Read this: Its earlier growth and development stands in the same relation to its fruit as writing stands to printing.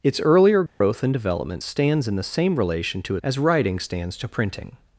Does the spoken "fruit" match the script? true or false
false